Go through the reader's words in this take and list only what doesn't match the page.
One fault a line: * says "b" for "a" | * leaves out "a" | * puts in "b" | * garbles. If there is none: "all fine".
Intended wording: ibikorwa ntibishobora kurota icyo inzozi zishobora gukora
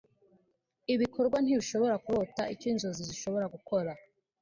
all fine